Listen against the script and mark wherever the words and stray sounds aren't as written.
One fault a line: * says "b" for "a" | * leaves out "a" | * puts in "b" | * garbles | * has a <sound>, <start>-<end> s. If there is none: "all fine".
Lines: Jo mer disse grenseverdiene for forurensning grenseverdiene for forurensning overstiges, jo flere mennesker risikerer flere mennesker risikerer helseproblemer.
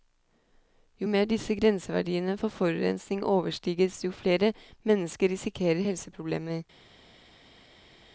* leaves out "grenseverdiene for forurensning"
* leaves out "flere mennesker risikerer"